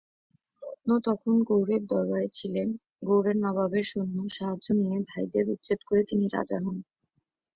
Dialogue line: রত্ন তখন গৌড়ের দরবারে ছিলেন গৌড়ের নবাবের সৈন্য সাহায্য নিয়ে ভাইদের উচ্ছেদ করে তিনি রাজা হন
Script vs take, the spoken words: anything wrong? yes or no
no